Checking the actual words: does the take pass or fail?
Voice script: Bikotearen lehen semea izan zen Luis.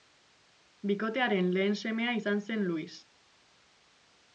pass